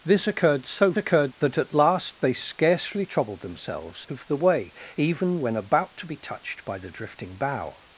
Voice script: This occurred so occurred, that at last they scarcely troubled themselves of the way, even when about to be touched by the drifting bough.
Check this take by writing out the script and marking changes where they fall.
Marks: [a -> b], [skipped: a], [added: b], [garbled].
This occurred so occurred, that at last they scarcely troubled themselves of the way, even when about to be touched by the drifting bough.